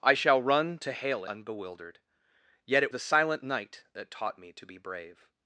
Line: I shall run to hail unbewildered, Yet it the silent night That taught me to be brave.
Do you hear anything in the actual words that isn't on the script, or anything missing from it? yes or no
no